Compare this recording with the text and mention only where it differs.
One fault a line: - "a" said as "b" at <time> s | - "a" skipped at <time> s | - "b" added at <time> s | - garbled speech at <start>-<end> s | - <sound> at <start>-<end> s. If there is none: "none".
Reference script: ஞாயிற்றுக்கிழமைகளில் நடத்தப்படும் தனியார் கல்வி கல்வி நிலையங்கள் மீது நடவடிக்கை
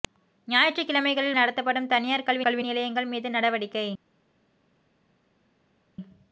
none